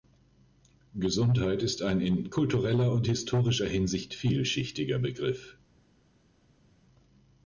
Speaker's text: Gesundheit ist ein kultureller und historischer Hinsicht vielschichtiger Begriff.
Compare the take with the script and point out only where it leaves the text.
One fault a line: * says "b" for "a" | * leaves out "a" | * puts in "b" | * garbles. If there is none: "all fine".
* puts in "in"